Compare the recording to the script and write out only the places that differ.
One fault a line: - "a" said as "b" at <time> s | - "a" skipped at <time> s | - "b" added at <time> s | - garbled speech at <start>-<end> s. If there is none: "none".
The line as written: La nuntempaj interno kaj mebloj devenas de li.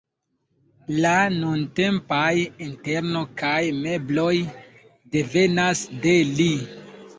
none